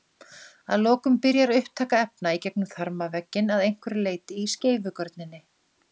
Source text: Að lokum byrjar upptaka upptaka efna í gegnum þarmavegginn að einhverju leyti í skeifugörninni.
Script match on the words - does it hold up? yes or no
no